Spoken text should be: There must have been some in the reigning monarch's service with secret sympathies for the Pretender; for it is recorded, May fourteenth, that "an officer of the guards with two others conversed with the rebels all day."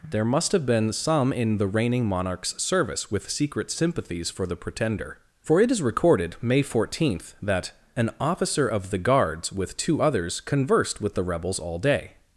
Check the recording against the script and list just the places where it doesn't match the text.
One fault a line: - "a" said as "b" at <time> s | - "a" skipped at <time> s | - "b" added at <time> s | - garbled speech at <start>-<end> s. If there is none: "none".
none